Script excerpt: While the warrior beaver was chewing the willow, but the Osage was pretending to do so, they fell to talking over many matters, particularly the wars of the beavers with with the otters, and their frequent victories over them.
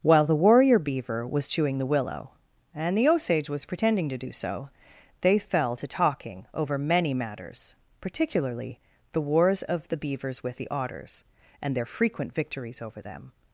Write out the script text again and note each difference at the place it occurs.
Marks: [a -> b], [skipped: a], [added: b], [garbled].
While the warrior beaver was chewing the willow, [but -> and] the Osage was pretending to do so, they fell to talking over many matters, particularly the wars of the beavers with [skipped: with] the otters, and their frequent victories over them.